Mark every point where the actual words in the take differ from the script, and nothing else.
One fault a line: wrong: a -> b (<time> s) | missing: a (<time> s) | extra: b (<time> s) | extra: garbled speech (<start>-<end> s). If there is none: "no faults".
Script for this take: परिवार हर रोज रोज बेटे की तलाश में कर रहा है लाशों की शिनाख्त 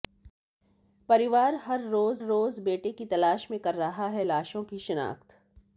no faults